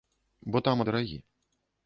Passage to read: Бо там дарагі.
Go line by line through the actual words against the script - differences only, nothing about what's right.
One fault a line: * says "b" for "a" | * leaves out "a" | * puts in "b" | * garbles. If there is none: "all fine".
all fine